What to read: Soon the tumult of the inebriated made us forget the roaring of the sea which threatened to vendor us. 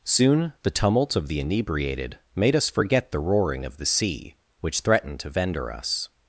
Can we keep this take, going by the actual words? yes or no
yes